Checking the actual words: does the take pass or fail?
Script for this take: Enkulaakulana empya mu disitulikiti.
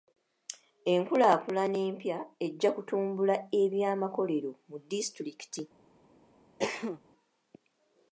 fail